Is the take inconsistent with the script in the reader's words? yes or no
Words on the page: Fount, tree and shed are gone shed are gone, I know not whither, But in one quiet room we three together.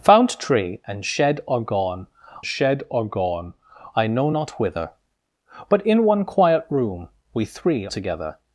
no